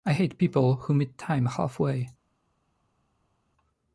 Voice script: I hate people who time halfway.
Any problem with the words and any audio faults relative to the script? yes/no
yes